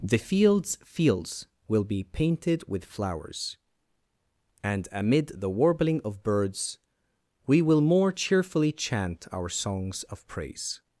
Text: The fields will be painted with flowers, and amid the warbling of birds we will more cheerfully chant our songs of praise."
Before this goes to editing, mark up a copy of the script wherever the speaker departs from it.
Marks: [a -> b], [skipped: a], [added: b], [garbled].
The fields [added: fields] will be painted with flowers, and amid the warbling of birds we will more cheerfully chant our songs of praise."